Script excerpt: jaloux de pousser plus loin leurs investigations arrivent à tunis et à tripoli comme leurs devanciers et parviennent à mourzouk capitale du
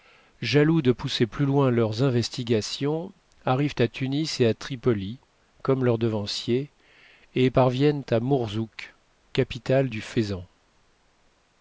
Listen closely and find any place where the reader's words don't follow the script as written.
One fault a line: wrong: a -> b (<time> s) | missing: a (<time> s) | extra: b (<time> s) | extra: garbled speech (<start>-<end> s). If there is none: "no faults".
no faults